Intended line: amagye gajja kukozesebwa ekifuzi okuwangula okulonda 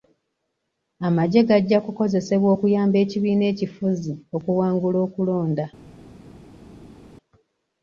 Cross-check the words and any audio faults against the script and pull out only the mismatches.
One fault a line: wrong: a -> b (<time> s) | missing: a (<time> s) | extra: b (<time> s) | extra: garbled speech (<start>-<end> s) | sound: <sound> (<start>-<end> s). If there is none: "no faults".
extra: okuyamba ekibiina (2.5 s)